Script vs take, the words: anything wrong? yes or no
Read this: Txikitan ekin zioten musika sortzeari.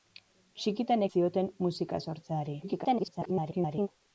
yes